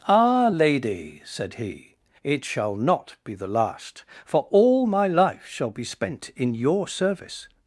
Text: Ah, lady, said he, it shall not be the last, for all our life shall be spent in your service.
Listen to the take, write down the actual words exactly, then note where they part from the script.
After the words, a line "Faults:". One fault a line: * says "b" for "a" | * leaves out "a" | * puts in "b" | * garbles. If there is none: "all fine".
Ah, lady, said he, it shall not be the last, for all my life shall be spent in your service.
Faults:
* says "my" for "our"